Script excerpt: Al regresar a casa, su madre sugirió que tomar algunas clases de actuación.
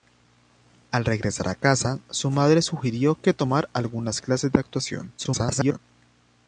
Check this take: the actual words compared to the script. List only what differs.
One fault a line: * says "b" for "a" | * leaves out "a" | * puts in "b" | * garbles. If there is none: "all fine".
* garbles